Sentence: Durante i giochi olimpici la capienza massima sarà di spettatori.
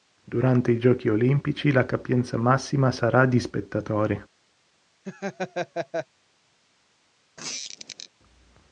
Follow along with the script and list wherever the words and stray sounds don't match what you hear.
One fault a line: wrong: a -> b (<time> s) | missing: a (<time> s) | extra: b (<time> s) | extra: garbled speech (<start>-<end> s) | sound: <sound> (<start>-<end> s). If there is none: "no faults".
sound: laugh (5.0-6.1 s)
sound: squeak (7.4-8.1 s)